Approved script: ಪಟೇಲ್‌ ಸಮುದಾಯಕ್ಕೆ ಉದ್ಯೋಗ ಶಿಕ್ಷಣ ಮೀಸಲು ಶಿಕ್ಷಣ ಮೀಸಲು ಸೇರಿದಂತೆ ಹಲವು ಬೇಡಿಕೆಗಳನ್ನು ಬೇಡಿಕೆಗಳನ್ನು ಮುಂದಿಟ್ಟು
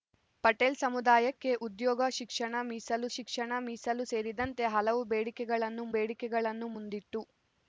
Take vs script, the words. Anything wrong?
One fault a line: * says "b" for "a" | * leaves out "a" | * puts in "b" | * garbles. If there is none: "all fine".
all fine